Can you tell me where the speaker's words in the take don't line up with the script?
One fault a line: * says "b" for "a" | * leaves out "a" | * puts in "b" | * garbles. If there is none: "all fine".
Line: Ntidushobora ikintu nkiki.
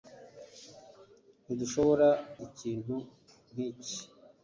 all fine